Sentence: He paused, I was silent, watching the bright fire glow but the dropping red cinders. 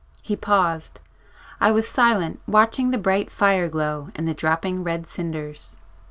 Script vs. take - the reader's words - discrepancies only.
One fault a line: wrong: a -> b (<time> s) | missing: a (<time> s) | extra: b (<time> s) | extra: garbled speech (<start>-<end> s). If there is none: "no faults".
wrong: but -> and (4.2 s)